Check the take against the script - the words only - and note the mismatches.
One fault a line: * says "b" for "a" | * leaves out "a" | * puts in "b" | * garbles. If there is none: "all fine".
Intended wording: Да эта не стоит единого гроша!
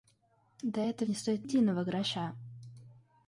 all fine